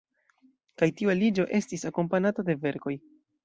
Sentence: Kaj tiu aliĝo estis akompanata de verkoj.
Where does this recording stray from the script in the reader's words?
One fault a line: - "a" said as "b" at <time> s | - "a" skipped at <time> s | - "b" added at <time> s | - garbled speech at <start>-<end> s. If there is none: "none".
none